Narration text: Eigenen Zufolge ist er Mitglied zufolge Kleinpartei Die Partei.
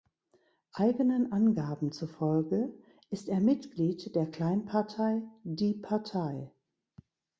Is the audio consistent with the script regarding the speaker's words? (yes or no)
no